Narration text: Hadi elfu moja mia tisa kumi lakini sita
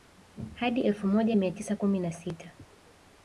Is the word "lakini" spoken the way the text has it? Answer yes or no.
no